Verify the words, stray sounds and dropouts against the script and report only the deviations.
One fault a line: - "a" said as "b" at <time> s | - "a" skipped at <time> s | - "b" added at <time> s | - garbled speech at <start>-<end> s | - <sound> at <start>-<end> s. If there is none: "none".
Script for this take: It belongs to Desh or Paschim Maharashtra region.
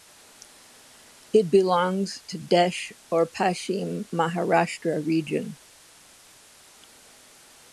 none